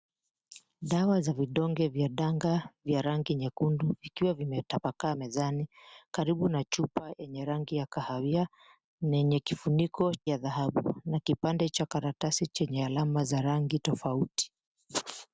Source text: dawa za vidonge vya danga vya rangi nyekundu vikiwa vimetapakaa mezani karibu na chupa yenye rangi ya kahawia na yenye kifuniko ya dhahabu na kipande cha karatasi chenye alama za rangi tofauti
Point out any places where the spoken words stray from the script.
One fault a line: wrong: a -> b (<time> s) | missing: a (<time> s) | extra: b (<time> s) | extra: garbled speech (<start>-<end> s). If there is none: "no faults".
no faults